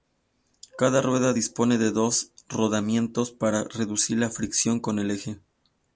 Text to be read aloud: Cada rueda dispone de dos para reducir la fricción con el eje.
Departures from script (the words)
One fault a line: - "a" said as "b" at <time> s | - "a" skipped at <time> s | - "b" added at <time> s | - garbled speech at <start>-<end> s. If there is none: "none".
- "rodamientos" added at 2.5 s